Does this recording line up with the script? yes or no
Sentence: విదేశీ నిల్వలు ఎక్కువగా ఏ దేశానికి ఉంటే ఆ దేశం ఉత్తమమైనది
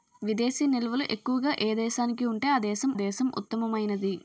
no